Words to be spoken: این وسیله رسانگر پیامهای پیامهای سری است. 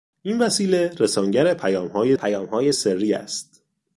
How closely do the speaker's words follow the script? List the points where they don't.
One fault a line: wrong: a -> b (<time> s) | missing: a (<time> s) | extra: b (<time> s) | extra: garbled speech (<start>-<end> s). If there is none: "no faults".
no faults